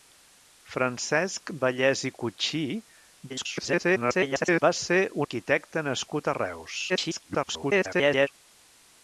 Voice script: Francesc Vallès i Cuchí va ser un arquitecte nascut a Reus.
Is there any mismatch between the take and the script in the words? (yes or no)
yes